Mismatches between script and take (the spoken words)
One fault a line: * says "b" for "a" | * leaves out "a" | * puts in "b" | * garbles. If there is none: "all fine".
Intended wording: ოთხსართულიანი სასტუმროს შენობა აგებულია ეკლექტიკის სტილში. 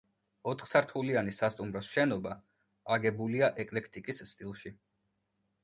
all fine